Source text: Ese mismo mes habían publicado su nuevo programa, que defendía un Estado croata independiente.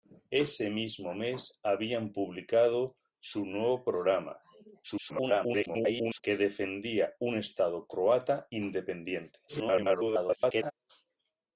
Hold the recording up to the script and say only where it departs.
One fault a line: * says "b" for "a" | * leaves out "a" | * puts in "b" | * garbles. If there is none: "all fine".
* garbles
* garbles